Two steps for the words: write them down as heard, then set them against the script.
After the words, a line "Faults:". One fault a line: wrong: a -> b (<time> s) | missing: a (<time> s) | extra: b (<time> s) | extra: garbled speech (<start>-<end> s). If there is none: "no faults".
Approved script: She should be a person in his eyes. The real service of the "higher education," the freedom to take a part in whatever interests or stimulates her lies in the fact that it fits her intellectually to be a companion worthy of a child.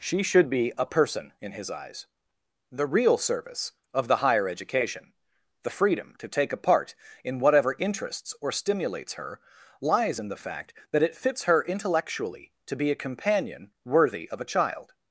She should be a person in his eyes. The real service of the "higher education," the freedom to take a part in whatever interests or stimulates her lies in the fact that it fits her intellectually to be a companion worthy of a child.
Faults:
no faults